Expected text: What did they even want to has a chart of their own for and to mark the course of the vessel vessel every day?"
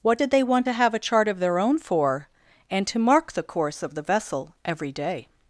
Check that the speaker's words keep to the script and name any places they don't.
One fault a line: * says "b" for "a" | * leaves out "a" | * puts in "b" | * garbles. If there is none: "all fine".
* leaves out "even"
* says "have" for "has"
* leaves out "vessel"